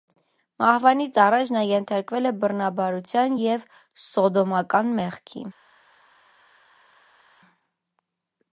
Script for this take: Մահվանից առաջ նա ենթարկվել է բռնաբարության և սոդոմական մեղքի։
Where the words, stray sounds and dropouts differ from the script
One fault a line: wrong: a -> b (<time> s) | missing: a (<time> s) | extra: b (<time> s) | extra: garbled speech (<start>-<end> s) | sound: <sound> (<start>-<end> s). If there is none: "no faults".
no faults